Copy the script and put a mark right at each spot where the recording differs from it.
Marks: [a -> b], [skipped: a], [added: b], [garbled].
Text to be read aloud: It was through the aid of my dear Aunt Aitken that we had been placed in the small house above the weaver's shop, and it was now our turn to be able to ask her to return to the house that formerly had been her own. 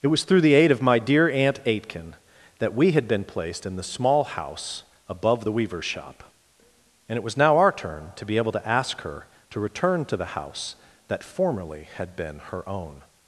It was through the aid of my dear Aunt Aitken that we had been placed in the small house above the weaver's shop, and it was now our turn to be able to ask her to return to the house that formerly had been her own.